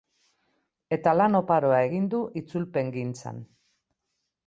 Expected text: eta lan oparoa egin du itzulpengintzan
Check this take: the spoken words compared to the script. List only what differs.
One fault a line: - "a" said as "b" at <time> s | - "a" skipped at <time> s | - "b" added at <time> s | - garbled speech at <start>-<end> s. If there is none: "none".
none